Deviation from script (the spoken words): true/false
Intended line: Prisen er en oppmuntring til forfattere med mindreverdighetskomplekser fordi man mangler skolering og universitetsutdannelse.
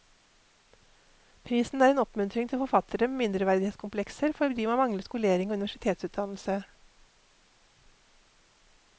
false